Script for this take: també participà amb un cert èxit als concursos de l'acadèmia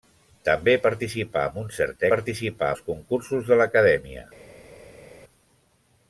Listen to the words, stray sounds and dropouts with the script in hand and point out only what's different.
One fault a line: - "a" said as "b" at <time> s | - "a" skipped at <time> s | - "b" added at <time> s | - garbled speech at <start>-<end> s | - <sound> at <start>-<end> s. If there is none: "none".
- "èxit" said as "participà" at 2.1 s